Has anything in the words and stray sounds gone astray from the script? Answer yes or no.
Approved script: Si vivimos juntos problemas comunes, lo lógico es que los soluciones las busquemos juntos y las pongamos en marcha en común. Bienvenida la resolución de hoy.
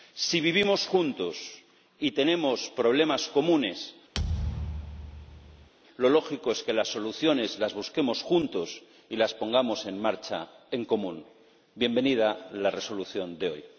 yes